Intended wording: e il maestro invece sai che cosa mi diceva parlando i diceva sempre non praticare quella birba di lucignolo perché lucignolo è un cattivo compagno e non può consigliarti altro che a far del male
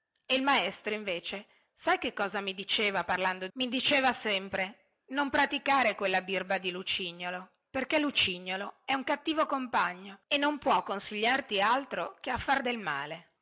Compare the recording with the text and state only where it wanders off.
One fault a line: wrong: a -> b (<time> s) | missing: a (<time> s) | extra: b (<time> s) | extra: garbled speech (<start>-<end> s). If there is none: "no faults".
no faults